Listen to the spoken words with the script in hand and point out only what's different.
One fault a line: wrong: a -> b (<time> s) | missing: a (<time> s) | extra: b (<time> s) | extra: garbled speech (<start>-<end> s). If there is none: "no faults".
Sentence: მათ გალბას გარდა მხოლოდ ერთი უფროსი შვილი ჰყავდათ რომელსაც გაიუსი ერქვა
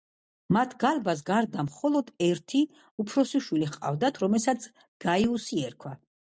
no faults